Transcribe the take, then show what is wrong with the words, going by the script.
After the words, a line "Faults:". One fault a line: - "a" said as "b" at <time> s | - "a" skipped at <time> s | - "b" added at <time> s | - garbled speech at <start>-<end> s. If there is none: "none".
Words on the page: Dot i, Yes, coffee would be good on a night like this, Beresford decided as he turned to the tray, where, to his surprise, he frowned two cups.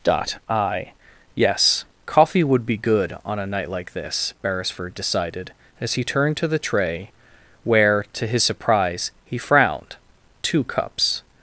Dot i, Yes, coffee would be good on a night like this, Beresford decided as he turned to the tray, where, to his surprise, he frowned two cups.
Faults:
none